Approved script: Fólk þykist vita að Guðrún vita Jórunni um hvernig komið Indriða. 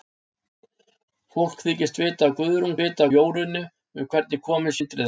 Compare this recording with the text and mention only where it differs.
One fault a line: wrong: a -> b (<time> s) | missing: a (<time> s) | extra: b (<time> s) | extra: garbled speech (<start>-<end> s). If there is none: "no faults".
no faults